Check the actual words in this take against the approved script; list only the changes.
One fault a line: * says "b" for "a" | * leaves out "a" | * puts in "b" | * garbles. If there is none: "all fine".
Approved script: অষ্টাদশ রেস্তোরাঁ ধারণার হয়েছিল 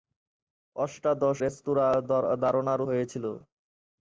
all fine